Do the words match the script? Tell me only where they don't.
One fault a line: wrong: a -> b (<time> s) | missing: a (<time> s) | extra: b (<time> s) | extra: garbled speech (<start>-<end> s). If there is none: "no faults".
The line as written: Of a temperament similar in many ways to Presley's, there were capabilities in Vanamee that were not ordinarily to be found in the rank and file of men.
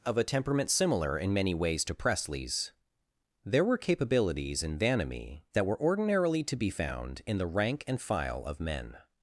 missing: not (5.8 s)